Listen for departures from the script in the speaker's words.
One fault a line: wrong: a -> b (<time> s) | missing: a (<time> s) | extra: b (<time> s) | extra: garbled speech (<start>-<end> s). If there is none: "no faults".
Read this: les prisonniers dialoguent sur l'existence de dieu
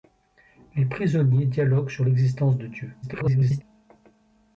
extra: garbled speech (3.0-3.6 s)